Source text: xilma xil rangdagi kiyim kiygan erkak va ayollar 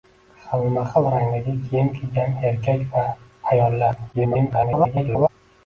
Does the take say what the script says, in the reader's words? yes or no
no